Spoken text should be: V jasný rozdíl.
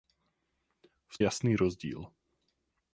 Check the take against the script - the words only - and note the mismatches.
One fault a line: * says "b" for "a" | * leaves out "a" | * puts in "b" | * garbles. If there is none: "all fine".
all fine